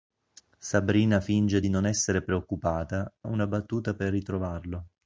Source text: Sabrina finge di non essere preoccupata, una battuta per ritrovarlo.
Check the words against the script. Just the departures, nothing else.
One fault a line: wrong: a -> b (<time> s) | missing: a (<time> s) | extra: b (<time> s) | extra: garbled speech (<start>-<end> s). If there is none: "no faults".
no faults